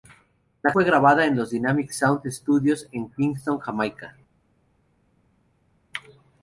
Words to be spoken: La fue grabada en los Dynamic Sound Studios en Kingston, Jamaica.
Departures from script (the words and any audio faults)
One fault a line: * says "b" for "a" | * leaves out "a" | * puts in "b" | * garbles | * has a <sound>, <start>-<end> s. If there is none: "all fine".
all fine